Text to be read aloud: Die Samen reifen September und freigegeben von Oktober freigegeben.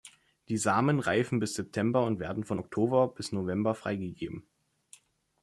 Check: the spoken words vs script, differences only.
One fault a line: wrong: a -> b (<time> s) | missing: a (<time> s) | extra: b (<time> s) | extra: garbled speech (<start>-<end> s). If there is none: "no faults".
extra: bis (1.4 s)
wrong: freigegeben -> werden (2.2 s)
extra: bis November (3.1 s)